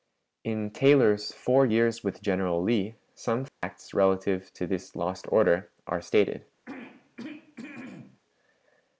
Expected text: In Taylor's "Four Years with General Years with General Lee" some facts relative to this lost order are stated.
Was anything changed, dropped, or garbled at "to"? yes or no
no